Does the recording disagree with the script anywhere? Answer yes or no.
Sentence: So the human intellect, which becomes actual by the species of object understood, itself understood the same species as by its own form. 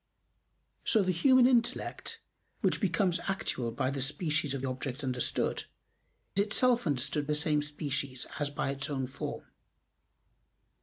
no